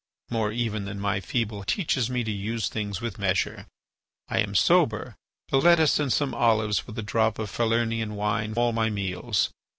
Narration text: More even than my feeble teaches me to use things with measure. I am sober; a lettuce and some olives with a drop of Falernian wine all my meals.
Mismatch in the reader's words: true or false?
false